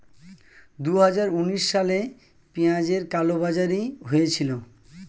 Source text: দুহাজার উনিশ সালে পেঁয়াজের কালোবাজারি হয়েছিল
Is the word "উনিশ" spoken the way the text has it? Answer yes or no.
yes